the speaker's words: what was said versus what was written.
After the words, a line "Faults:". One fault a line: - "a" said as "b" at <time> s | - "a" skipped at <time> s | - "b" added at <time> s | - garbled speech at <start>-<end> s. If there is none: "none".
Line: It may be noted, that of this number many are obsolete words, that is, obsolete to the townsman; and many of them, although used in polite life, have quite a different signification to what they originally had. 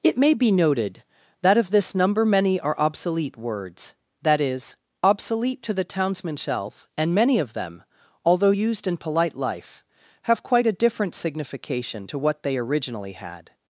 It may be noted, that of this number many are obsolete words, that is, obsolete to the townsman; shelf and many of them, although used in polite life, have quite a different signification to what they originally had.
Faults:
- "shelf" added at 6.4 s